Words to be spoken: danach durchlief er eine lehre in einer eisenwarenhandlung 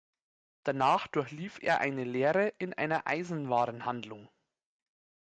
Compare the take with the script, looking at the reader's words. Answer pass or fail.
pass